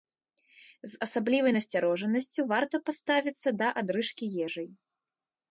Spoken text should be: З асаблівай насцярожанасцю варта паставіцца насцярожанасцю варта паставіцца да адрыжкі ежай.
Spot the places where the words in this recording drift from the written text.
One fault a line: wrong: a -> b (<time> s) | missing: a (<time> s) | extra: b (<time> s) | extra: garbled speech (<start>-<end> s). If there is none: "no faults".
missing: насцярожанасцю варта паставіцца (3.5 s)